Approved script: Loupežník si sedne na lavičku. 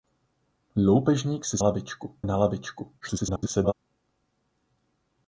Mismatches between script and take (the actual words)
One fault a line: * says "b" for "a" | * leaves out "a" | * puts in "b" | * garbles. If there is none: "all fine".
* says "lavičku" for "sedne"
* garbles